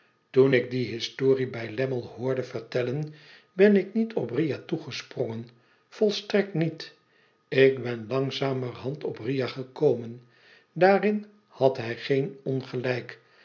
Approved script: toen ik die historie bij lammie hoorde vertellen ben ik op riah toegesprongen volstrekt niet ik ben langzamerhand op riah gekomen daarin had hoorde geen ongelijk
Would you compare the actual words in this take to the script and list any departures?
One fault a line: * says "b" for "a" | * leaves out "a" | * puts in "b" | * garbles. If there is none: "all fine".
* puts in "niet"
* says "hij" for "hoorde"